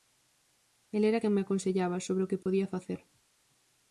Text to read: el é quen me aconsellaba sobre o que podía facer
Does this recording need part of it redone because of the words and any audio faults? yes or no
yes